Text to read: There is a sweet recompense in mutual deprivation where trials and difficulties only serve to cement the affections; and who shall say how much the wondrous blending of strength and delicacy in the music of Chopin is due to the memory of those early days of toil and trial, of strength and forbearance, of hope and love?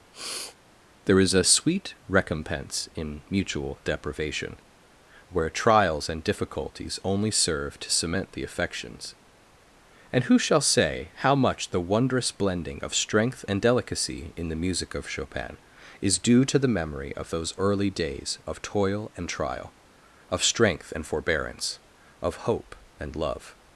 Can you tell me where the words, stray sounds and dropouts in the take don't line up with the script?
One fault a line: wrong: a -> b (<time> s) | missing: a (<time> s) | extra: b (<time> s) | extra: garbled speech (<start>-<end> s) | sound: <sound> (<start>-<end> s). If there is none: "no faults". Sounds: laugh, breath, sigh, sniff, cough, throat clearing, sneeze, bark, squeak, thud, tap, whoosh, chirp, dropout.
sound: sniff (0.1-0.6 s)